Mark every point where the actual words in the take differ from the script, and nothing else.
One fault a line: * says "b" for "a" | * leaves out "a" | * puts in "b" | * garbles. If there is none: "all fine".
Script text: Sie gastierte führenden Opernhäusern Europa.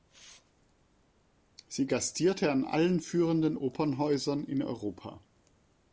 * puts in "an allen"
* puts in "in"